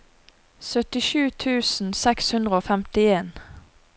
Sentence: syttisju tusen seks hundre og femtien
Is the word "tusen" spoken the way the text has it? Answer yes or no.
yes